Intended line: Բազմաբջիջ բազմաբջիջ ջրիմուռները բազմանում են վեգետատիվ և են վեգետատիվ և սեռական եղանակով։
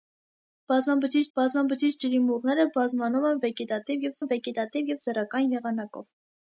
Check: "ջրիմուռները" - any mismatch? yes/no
no